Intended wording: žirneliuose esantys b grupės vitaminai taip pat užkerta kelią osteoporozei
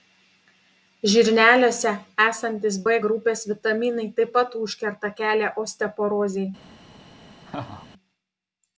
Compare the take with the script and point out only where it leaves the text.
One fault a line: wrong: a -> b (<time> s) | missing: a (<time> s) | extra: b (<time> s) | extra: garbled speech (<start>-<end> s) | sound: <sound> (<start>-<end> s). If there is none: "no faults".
sound: laugh (7.5-7.9 s)